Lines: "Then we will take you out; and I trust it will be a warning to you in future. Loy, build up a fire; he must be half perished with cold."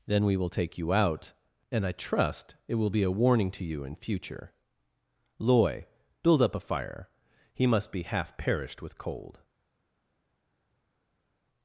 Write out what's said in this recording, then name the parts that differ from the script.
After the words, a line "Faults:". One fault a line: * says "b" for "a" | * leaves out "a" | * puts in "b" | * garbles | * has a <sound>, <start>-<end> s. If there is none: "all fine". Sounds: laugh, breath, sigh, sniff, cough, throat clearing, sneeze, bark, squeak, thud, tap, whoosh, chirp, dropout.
"Then we will take you out; and I trust it will be a warning to you in future. Loy, build up a fire; he must be half perished with cold."
Faults:
all fine